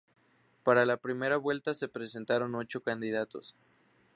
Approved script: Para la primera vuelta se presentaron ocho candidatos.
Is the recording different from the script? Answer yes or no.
no